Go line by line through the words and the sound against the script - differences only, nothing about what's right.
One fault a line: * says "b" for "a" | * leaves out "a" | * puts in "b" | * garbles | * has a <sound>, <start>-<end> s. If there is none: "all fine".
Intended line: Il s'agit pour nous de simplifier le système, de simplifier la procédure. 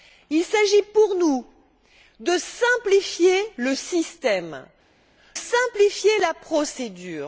* leaves out "de"